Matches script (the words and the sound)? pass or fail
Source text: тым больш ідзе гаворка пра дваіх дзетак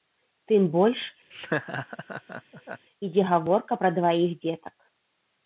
fail